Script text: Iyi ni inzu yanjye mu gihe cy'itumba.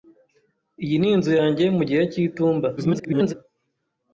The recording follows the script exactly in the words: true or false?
false